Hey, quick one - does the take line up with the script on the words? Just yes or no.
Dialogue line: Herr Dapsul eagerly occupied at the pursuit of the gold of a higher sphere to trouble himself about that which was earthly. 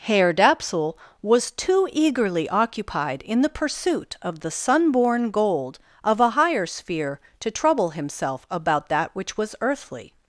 no